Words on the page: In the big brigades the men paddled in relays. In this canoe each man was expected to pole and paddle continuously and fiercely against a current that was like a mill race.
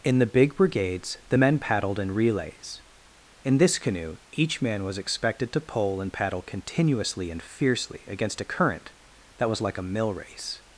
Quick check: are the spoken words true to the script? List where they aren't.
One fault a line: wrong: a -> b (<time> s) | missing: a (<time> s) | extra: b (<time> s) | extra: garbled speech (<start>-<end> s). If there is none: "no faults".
no faults